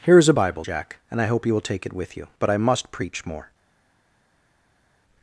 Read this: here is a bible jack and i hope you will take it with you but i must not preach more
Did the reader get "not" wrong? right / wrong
wrong